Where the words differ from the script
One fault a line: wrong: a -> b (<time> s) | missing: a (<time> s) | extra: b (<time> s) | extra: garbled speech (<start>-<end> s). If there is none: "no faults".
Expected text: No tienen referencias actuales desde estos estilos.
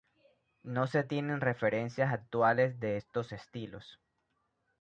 extra: se (0.9 s)
wrong: desde -> de (2.8 s)